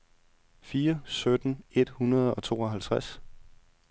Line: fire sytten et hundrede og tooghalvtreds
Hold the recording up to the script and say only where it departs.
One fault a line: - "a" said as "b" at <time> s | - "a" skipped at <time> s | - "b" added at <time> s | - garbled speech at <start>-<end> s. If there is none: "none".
none